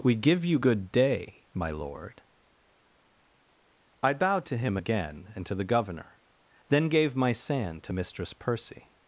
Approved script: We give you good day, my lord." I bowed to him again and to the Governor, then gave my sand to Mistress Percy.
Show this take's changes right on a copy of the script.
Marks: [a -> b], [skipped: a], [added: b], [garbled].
We give you good day, my lord." I bowed to him again and to the Governor, then gave my sand to Mistress Percy.